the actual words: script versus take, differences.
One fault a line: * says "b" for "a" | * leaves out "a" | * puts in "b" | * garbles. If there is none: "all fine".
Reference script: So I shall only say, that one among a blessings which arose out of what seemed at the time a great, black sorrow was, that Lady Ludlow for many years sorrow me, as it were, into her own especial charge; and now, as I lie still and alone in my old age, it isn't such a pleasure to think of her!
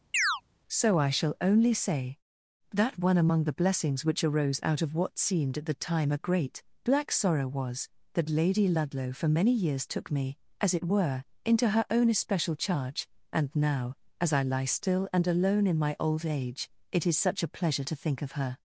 * says "the" for "a"
* says "took" for "sorrow"
* says "is" for "isn't"